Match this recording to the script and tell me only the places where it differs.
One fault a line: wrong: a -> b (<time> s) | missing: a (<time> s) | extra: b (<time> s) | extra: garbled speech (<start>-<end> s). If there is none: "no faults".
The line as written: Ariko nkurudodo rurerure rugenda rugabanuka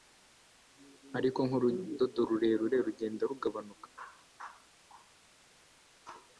no faults